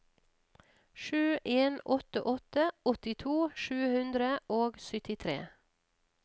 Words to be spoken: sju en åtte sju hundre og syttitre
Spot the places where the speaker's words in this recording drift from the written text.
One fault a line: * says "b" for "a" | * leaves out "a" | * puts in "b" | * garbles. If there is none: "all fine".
* puts in "åtte åttito"